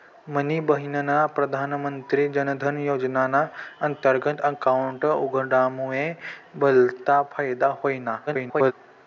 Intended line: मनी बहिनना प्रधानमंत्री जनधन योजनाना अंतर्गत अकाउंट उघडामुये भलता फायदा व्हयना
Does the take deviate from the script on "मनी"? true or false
false